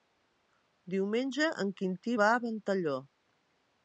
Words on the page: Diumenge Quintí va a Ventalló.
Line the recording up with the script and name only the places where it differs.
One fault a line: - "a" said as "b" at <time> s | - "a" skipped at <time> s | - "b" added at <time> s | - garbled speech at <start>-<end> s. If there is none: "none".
- "en" added at 1.6 s